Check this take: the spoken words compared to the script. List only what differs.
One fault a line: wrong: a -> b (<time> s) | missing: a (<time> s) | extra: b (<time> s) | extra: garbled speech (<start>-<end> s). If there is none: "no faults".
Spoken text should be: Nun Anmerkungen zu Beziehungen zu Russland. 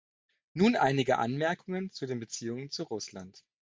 extra: einige (0.8 s)
extra: den (2.1 s)